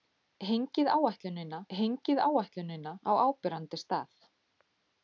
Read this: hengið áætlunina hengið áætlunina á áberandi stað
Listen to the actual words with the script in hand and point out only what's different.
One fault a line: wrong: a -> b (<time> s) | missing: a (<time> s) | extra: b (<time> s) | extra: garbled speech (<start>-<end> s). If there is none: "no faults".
no faults